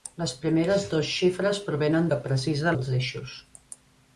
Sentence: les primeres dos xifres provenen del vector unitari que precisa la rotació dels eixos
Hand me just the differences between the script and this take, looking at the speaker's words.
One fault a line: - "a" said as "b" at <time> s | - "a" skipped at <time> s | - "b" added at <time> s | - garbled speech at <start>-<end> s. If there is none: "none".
- "del vector unitari" skipped at 2.1 s
- "la rotació" skipped at 2.8 s